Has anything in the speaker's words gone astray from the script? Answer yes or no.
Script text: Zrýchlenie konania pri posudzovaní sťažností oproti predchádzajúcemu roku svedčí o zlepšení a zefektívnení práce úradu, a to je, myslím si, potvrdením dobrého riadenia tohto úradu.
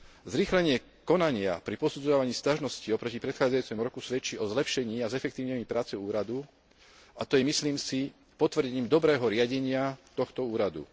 no